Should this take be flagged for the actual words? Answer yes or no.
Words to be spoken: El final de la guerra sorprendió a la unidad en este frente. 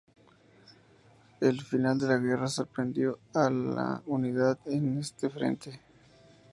no